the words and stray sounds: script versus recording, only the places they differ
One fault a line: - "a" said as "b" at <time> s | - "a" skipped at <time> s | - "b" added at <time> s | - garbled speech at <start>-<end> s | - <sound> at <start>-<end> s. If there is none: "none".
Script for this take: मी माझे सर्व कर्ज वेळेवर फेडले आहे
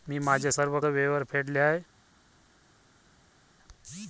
- "कर्ज" skipped at 0.8 s